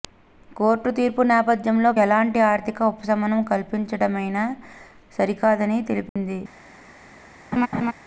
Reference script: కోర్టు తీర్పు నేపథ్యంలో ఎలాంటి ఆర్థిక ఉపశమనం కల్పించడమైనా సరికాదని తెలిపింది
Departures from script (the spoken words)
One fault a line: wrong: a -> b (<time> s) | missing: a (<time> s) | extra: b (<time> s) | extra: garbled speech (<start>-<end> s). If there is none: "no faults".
no faults